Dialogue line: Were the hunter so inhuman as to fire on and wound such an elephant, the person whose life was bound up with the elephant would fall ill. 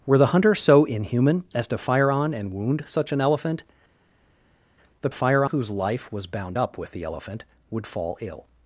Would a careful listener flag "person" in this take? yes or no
yes